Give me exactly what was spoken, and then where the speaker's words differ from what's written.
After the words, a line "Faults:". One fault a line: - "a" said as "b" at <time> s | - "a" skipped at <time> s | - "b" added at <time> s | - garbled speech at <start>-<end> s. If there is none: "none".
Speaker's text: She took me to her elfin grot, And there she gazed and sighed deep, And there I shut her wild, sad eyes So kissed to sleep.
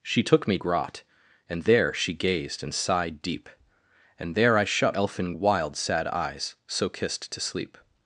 She took me grot, And there she gazed and sighed deep, And there I shut elfin wild, sad eyes So kissed to sleep.
Faults:
- "to her elfin" skipped at 0.6 s
- "her" said as "elfin" at 4.9 s